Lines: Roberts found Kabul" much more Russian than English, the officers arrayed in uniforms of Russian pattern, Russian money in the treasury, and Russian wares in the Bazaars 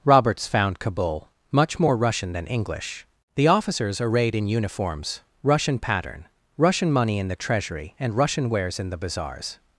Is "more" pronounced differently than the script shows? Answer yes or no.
no